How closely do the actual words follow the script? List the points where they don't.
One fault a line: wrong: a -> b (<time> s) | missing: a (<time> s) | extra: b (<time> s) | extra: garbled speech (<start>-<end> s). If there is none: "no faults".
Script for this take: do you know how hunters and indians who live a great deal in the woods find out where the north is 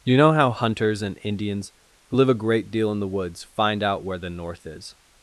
missing: do (0.0 s)